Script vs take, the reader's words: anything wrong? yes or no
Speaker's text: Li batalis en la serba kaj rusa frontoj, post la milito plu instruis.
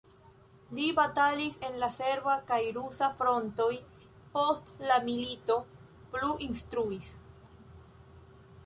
no